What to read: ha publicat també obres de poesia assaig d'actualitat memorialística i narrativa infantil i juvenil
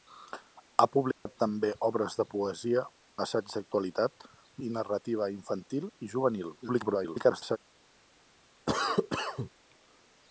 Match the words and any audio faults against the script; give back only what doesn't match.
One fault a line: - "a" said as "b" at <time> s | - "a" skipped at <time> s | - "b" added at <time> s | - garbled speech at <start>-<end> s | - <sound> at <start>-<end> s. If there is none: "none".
- dropout at 1.1-1.3 s
- "memorialística" skipped at 4.3 s
- garbled speech at 6.6-7.6 s
- cough at 8.7-9.5 s